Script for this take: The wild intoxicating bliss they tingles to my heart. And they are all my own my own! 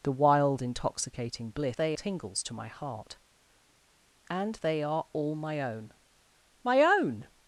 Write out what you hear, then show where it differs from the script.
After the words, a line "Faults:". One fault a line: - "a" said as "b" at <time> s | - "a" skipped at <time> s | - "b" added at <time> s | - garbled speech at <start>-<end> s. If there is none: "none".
The wild intoxicating bliss they tingles to my heart. And they are all my own my own!
Faults:
none